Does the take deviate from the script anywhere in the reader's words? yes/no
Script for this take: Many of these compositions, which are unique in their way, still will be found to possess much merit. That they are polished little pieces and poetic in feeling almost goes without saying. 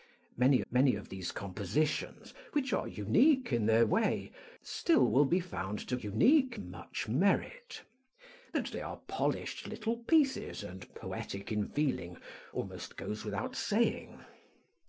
yes